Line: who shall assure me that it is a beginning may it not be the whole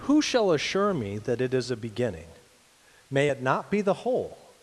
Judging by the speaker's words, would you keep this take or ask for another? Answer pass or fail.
pass